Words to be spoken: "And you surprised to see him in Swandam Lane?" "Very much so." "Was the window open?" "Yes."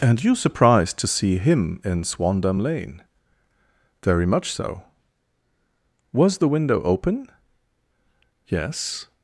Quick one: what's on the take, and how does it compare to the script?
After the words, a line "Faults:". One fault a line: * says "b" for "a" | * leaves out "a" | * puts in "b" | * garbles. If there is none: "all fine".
"And you surprised to see him in Swandam Lane?" "Very much so." "Was the window open?" "Yes."
Faults:
all fine